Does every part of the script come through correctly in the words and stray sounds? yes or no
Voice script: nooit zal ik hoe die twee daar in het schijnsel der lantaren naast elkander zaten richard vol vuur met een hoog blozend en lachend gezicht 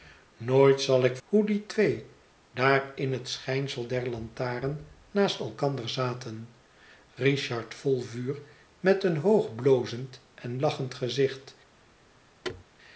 no